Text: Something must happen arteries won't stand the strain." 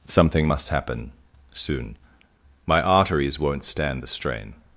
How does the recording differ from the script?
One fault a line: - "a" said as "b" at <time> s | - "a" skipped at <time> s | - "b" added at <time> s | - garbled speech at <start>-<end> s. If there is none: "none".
- "soon My" added at 1.5 s